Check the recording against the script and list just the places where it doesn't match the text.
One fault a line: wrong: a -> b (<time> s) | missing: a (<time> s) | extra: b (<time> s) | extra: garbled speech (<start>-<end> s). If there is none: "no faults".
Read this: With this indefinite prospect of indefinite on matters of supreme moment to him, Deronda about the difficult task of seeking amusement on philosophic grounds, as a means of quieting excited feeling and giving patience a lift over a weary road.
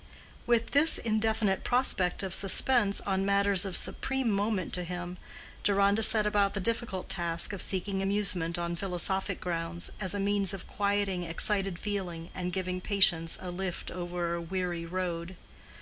wrong: indefinite -> suspense (2.3 s)
extra: set (6.0 s)